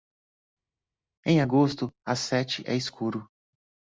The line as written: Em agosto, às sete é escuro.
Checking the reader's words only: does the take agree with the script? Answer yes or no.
yes